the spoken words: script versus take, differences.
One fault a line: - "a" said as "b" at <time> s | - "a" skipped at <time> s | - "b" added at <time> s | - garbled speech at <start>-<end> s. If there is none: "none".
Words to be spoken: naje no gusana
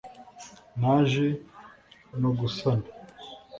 none